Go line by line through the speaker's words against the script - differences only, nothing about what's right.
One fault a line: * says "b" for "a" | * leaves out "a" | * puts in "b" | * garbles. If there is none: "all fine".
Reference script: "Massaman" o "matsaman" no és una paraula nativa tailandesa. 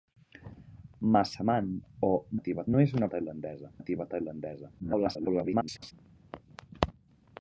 * says "nativa" for "matsaman"
* says "tailandesa" for "paraula"
* garbles